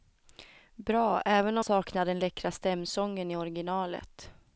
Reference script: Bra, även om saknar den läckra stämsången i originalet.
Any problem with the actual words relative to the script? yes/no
no